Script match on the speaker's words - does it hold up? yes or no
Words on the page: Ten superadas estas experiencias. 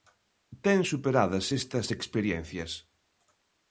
yes